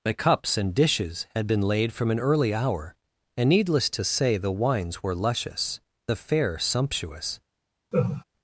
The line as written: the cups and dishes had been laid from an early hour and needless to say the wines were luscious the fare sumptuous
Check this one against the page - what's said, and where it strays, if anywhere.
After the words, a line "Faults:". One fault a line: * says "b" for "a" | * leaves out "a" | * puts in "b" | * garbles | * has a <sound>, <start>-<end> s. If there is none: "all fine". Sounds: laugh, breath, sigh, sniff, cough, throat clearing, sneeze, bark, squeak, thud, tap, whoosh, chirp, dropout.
the cups and dishes had been laid from an early hour and needless to say the wines were luscious the fare sumptuous
Faults:
* has a laugh, 7.9-8.2 s